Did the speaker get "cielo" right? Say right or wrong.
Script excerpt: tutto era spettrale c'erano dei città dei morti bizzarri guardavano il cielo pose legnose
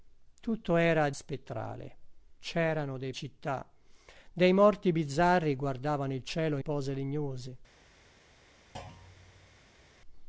right